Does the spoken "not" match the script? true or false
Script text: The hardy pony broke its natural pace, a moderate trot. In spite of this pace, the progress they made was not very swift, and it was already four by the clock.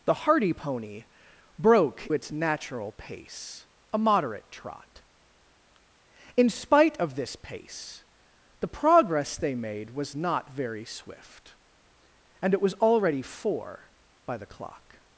true